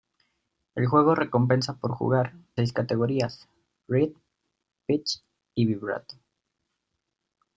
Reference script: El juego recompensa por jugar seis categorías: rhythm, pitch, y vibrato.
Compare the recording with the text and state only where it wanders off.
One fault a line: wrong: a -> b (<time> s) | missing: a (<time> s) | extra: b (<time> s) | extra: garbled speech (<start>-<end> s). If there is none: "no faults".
no faults